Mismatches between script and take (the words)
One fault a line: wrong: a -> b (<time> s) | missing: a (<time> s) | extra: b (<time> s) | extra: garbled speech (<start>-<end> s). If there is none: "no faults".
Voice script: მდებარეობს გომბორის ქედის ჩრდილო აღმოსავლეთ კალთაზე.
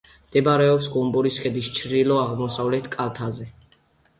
no faults